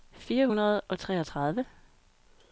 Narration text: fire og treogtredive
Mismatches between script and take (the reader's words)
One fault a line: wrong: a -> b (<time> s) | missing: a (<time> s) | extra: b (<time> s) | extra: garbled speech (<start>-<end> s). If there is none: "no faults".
extra: hundrede (0.4 s)